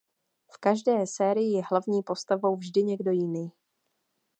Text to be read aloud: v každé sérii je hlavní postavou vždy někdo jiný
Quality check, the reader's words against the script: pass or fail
pass